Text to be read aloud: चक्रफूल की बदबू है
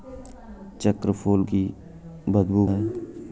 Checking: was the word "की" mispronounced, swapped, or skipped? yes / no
no